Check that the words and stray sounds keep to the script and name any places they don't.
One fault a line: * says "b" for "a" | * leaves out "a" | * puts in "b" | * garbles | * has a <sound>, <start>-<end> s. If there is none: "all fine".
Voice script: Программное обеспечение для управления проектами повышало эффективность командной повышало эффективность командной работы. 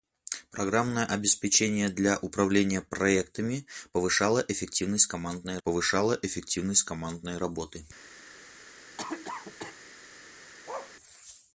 * has a cough, 9.0-9.8 s
* has a bark, 10.7-11.0 s